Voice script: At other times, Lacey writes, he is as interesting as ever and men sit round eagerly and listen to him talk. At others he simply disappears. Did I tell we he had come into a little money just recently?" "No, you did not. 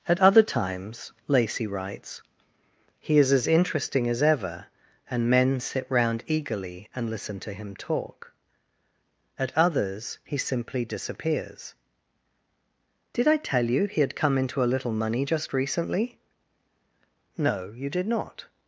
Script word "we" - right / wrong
wrong